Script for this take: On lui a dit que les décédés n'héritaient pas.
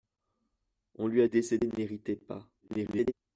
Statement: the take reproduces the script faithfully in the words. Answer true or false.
false